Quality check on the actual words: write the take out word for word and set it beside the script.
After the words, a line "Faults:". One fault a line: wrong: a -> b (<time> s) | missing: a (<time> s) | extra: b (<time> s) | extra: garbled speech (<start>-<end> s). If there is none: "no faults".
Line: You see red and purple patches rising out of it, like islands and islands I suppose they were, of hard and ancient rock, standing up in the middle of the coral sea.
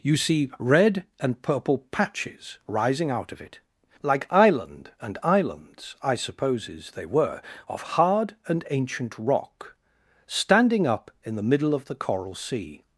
You see red and purple patches rising out of it, like island and islands I supposes they were, of hard and ancient rock, standing up in the middle of the coral sea.
Faults:
wrong: islands -> island (4.3 s)
wrong: suppose -> supposes (6.1 s)